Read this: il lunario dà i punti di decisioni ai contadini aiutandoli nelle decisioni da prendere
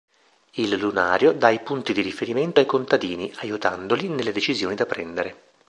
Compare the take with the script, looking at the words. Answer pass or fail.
fail